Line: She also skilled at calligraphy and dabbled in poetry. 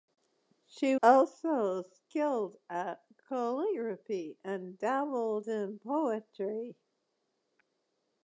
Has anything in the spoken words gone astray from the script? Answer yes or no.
no